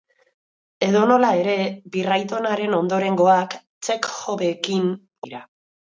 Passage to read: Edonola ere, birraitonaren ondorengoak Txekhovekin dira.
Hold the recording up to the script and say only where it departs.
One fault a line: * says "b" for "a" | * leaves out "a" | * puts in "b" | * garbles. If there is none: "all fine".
all fine